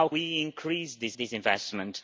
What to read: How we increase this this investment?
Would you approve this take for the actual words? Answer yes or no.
yes